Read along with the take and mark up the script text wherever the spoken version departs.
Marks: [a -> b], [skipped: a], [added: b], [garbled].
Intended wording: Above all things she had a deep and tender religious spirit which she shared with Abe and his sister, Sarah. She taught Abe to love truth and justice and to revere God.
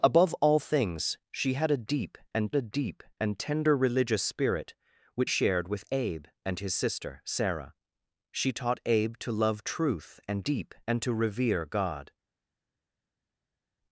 Above all things she had a deep and [added: a deep and] tender religious spirit which [skipped: she] shared with Abe and his sister, Sarah. She taught Abe to love truth and [justice -> deep] and to revere God.